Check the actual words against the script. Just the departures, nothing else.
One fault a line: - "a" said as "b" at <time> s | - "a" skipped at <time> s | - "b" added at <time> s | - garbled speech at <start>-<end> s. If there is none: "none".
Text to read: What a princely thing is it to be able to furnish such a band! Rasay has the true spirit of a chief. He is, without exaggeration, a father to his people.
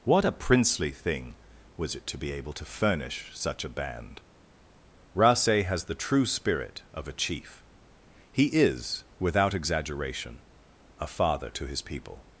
- "is" said as "was" at 1.8 s